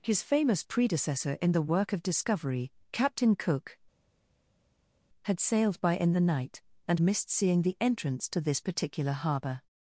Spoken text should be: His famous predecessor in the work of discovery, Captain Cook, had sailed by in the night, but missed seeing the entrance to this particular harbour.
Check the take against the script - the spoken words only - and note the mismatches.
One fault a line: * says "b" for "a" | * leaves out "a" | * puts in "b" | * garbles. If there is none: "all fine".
* says "and" for "but"